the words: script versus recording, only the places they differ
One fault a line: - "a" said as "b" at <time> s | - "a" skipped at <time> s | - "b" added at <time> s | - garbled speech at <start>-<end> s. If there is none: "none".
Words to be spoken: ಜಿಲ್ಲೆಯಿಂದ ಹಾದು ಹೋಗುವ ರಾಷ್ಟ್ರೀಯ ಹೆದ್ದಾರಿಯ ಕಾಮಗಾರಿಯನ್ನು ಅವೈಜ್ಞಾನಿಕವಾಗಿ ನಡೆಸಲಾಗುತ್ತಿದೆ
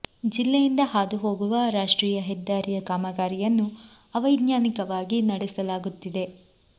none